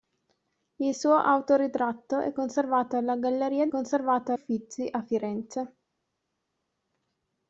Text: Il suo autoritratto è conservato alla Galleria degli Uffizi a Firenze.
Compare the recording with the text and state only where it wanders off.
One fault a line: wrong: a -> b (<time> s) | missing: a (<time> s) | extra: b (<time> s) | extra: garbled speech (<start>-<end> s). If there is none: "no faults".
wrong: degli -> conservato (3.7 s)